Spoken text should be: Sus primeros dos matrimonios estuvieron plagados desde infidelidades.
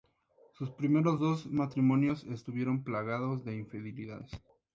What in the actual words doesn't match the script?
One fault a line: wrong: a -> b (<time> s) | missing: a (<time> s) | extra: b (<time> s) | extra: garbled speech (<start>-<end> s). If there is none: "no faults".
wrong: desde -> de (3.4 s)